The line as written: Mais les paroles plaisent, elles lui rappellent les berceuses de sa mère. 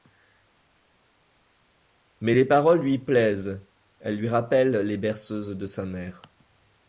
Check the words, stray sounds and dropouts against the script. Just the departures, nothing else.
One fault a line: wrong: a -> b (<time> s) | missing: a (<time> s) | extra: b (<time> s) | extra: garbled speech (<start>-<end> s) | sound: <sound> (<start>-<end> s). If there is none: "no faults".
extra: lui (2.8 s)